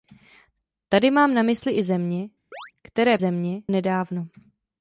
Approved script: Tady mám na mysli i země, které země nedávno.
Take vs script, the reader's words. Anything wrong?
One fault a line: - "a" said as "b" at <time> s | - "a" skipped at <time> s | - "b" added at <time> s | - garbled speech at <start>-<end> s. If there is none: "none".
none